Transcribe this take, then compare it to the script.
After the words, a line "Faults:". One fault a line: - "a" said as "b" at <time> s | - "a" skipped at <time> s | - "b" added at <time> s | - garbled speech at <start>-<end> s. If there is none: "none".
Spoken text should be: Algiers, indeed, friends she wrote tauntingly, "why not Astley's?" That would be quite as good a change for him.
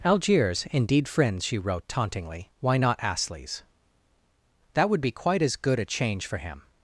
Algiers, indeed, friends she wrote tauntingly, "why not Astley's?" That would be quite as good a change for him.
Faults:
none